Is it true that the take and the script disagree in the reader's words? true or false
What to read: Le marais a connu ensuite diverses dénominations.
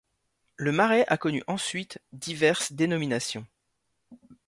false